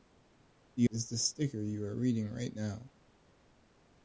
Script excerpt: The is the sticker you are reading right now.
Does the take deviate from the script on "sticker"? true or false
false